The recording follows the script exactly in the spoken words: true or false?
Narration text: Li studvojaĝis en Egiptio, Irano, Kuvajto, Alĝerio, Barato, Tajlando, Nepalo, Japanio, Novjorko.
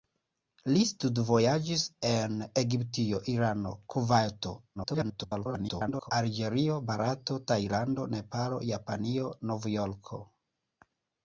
false